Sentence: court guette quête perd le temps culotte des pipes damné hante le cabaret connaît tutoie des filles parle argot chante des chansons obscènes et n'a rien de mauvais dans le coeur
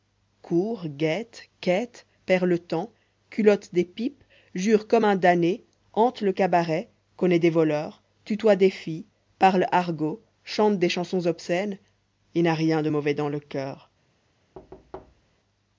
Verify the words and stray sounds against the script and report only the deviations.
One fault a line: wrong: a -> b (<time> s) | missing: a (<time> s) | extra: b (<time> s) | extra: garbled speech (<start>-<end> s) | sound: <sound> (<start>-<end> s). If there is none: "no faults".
extra: jure comme un (4.5 s)
extra: des voleurs (7.4 s)
sound: thud (14.5-15.4 s)